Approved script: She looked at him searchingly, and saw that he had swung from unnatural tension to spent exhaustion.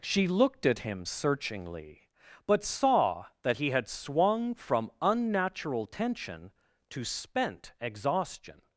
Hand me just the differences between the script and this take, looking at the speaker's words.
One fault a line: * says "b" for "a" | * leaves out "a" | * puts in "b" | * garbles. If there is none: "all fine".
* says "but" for "and"